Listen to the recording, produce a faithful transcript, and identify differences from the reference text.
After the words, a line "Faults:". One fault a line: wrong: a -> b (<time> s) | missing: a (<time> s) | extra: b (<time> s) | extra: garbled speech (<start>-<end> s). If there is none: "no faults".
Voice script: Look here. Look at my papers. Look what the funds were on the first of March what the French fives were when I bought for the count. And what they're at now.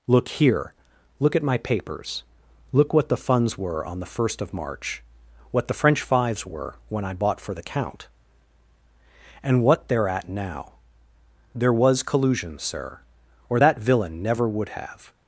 Look here. Look at my papers. Look what the funds were on the first of March what the French fives were when I bought for the count. And what they're at now. There was collusion, sir, or that villain never would have
Faults:
extra: There was collusion sir or that villain never would have (11.5 s)